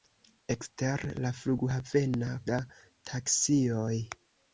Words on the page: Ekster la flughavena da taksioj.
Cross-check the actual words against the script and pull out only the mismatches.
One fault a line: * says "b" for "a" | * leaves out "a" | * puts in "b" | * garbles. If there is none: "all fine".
all fine